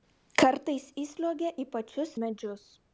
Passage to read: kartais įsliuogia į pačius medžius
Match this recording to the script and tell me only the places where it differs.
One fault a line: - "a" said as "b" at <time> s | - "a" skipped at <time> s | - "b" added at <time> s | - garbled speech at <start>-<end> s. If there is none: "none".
none